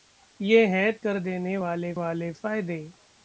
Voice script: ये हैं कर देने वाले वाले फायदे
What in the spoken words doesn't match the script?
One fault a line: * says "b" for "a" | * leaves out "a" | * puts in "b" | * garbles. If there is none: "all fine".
all fine